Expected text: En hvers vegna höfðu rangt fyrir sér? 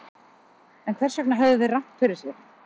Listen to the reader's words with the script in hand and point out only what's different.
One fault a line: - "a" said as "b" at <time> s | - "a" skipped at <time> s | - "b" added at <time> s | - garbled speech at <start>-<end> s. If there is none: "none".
- "þeir" added at 1.6 s